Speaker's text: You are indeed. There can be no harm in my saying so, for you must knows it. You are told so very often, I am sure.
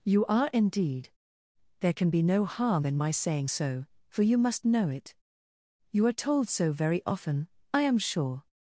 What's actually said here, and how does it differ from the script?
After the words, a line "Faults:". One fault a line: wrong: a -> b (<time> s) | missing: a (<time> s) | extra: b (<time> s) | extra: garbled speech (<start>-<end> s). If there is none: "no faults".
You are indeed. There can be no harm in my saying so, for you must know it. You are told so very often, I am sure.
Faults:
wrong: knows -> know (4.6 s)